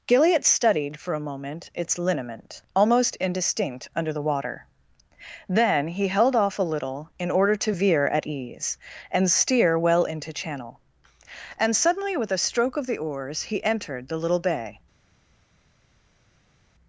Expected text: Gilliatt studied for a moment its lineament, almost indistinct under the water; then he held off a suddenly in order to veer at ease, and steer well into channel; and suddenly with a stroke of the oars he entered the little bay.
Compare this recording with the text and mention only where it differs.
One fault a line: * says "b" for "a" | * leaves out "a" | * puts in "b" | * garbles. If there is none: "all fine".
* says "little" for "suddenly"